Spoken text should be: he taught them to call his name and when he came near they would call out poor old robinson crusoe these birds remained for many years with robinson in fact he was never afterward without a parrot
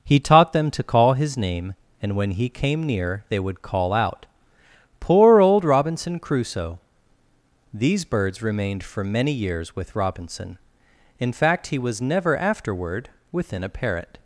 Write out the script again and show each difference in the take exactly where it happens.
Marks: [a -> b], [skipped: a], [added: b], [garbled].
he taught them to call his name and when he came near they would call out poor old robinson crusoe these birds remained for many years with robinson in fact he was never afterward [without -> within] a parrot